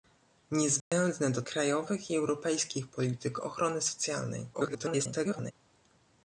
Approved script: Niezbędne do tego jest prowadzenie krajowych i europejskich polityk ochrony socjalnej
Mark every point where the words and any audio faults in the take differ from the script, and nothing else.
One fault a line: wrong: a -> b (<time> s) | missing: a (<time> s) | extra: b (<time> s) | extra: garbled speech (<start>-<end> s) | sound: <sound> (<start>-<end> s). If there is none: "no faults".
sound: dropout (0.8-0.9 s)
missing: tego jest prowadzenie (1.4 s)
extra: garbled speech (4.5-5.5 s)